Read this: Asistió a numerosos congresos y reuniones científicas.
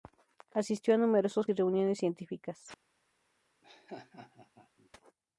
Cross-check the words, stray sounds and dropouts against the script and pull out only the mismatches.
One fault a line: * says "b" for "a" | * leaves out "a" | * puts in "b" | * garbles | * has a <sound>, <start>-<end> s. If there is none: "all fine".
* leaves out "congresos"
* has a laugh, 3.6-4.9 s